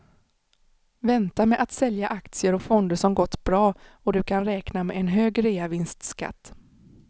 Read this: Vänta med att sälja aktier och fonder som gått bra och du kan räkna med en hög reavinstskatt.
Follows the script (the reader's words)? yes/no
yes